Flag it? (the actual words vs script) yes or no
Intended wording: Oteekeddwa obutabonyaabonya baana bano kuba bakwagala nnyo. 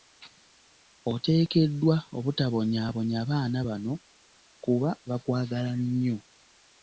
no